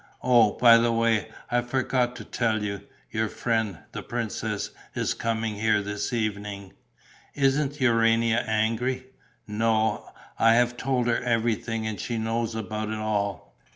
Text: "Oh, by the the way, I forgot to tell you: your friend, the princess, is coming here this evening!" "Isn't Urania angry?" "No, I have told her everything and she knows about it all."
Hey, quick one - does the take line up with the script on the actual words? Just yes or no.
no